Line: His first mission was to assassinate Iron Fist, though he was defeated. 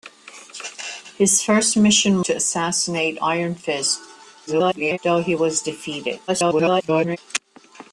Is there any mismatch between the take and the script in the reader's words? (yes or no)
yes